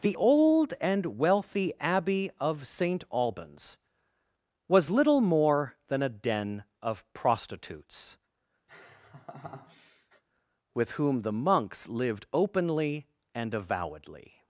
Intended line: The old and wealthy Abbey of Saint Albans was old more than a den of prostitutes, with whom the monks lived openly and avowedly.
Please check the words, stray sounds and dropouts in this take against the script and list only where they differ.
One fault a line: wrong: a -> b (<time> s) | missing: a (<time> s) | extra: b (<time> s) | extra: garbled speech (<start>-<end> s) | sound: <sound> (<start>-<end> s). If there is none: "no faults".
wrong: old -> little (4.9 s)
sound: laugh (8.7-10.2 s)